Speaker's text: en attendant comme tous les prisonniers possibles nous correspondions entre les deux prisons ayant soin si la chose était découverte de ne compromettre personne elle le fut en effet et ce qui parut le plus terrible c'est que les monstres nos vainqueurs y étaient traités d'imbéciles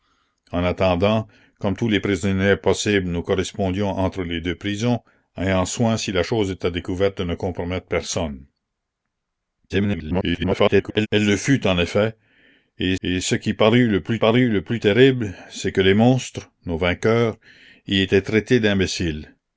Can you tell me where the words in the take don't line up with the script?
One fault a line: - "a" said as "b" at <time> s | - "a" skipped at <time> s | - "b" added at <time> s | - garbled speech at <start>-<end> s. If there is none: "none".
- garbled speech at 9.7-11.1 s
- "et" added at 13.0 s
- "parut le plus" added at 14.2 s